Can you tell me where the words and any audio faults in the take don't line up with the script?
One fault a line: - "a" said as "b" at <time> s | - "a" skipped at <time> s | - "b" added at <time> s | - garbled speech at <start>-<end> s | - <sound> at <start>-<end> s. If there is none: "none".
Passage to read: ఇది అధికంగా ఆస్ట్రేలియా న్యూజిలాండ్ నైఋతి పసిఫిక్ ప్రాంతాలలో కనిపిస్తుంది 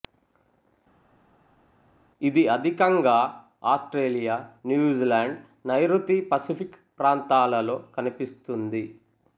none